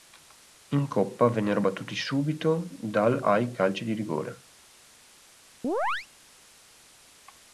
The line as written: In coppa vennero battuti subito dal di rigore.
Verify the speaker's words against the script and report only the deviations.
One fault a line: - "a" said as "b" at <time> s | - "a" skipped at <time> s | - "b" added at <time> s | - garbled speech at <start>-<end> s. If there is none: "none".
- "ai calci" added at 3.2 s